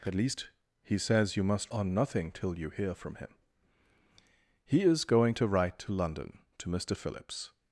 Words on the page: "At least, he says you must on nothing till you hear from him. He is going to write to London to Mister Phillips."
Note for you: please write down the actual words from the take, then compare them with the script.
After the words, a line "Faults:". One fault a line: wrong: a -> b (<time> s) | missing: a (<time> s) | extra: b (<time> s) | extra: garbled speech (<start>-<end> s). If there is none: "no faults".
"At least, he says you must on nothing till you hear from him. He is going to write to London to Mister Phillips."
Faults:
no faults